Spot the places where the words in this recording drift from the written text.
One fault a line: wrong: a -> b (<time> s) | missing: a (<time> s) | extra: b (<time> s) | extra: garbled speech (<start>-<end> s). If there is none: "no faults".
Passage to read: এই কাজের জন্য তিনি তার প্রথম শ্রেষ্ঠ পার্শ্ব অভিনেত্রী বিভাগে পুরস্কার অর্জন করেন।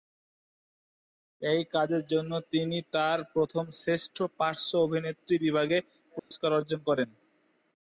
no faults